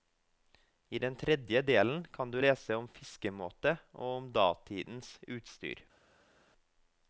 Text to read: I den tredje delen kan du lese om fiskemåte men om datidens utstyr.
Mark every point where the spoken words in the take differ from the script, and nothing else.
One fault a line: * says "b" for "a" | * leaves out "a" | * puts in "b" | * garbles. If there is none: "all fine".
* says "og" for "men"